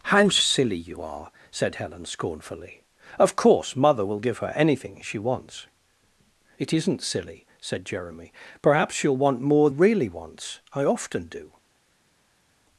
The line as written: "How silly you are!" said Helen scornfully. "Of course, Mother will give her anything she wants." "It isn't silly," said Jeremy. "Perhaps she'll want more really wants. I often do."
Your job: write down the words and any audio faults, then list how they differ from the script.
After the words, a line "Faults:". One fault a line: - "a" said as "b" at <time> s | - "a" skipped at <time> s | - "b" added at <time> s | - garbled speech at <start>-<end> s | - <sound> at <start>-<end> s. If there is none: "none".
"How silly you are!" said Helen scornfully. "Of course, Mother will give her anything she wants." "It isn't silly," said Jeremy. "Perhaps she'll want more really wants. I often do."
Faults:
none